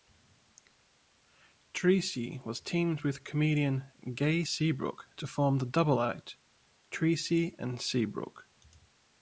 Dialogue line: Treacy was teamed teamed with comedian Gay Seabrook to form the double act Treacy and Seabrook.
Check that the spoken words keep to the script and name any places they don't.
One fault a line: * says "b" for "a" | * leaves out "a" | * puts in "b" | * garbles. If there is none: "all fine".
* leaves out "teamed"